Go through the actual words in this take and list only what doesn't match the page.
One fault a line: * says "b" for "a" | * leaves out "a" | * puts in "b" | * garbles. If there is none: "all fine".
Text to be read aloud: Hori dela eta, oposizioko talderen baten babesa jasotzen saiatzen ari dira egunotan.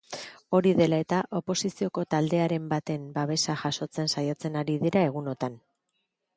all fine